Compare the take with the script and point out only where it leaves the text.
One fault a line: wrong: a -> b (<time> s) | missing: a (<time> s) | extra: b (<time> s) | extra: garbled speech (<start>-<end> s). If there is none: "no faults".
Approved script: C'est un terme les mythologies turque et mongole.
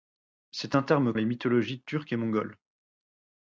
no faults